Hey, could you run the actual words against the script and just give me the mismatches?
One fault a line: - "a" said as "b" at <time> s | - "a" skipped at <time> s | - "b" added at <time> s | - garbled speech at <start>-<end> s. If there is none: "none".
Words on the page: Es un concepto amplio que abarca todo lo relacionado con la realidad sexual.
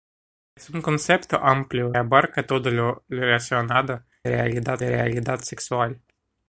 - "que" skipped at 1.9 s
- "con" said as "realidad" at 4.3 s